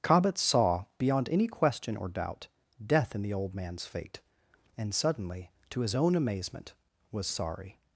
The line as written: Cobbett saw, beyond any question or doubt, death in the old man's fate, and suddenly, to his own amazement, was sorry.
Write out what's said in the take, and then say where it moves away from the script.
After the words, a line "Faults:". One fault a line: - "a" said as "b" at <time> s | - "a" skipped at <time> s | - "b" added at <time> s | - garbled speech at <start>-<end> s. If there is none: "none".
Cobbett saw, beyond any question or doubt, death in the old man's fate, and suddenly, to his own amazement, was sorry.
Faults:
none